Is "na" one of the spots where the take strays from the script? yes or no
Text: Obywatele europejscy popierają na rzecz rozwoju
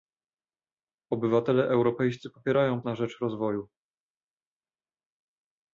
no